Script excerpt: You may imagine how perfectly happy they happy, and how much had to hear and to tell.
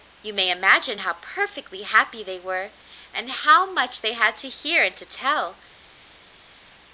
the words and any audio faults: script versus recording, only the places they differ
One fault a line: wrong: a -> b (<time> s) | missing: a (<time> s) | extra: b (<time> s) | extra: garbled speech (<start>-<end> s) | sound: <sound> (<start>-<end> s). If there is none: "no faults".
wrong: happy -> were (2.4 s)
extra: they (4.0 s)